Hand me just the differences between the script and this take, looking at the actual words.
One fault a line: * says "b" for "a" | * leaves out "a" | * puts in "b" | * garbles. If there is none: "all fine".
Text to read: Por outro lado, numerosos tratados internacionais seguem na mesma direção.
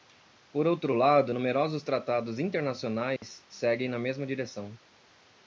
all fine